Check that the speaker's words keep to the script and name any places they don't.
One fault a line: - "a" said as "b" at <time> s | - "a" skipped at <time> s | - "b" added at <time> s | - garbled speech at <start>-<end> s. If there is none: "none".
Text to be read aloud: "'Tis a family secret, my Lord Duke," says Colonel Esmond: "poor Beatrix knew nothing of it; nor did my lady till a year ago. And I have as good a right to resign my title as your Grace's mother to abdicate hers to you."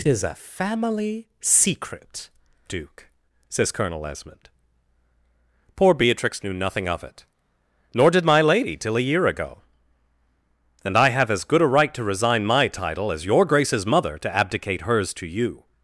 - "my Lord" skipped at 2.3 s